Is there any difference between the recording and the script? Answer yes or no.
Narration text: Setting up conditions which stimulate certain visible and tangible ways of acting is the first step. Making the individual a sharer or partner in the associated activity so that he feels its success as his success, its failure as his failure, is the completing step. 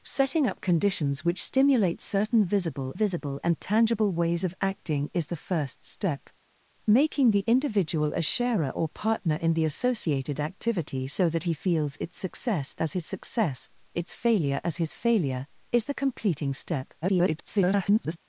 yes